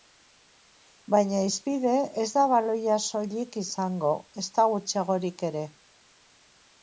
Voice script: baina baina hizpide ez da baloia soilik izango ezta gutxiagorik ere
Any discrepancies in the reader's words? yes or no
yes